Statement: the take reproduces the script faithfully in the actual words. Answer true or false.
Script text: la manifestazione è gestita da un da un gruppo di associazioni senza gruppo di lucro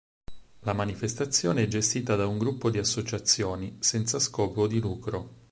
false